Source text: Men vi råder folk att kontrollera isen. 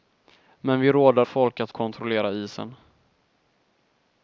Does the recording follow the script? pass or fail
pass